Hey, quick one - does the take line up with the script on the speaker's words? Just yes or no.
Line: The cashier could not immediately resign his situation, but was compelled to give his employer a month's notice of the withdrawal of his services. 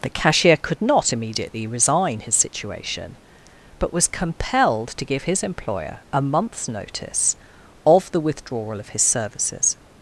yes